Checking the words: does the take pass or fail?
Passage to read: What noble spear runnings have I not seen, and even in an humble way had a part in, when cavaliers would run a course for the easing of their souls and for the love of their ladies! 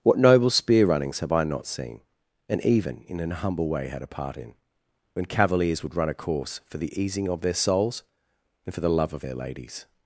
pass